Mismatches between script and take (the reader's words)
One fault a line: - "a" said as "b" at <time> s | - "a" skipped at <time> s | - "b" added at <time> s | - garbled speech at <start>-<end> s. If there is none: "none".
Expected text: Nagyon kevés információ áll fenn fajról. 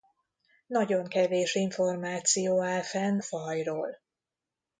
none